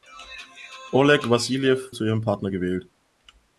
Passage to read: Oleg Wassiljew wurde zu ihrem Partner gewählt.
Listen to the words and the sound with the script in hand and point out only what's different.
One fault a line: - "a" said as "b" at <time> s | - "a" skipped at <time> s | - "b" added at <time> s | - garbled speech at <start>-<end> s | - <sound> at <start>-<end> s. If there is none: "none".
- "wurde" skipped at 1.9 s